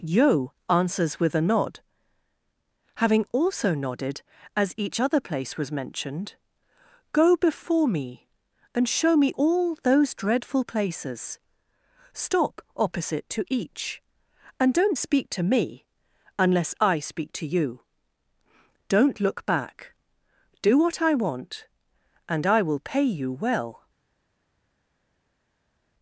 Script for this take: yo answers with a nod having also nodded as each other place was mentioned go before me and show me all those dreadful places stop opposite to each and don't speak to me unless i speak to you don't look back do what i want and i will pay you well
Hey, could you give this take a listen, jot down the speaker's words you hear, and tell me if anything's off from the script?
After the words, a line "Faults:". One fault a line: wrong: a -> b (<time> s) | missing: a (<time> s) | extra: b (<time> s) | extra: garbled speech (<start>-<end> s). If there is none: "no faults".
yo answers with a nod having also nodded as each other place was mentioned go before me and show me all those dreadful places stop opposite to each and don't speak to me unless i speak to you don't look back do what i want and i will pay you well
Faults:
no faults